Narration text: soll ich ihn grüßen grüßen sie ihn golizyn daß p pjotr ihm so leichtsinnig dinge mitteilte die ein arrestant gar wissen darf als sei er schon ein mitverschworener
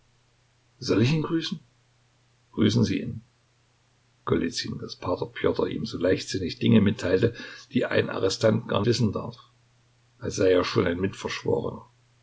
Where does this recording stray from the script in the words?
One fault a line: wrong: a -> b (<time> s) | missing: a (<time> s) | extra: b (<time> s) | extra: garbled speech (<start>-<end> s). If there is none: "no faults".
no faults